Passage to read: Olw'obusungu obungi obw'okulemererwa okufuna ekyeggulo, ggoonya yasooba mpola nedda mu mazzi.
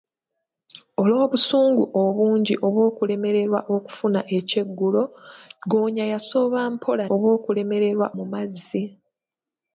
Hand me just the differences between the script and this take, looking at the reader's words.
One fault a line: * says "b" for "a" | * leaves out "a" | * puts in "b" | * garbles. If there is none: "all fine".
* says "obw'okulemererwa" for "nedda"